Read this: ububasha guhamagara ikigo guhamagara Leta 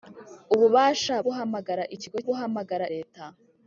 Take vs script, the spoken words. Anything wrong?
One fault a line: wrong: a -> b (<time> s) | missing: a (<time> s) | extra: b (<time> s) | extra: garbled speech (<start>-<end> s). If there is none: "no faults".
no faults